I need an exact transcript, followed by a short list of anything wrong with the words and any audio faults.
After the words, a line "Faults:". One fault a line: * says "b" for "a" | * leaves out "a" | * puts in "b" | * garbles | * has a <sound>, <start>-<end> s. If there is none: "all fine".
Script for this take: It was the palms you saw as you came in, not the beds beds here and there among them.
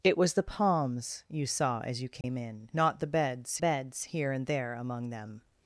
It was the palms you saw as you came in, not the beds beds here and there among them.
Faults:
* has a dropout, 2.2-2.2 s